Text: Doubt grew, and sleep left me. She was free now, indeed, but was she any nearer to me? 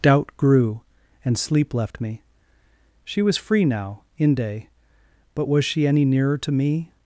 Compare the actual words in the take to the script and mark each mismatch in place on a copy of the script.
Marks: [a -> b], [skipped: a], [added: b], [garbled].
Doubt grew, and sleep left me. She was free now, [indeed, -> inde] but was she any nearer to me?